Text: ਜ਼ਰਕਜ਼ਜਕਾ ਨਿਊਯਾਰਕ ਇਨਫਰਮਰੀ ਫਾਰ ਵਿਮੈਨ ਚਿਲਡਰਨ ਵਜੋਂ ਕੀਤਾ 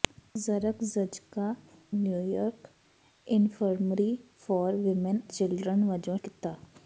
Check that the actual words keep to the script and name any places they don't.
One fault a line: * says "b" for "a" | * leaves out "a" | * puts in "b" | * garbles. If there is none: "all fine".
all fine